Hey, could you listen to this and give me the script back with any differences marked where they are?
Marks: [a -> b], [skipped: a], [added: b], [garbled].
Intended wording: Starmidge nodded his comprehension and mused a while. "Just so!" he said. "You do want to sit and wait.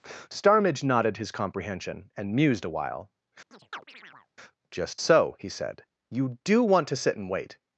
Starmidge nodded his comprehension and mused a while. "Just so!" he said. "You do want to sit and wait.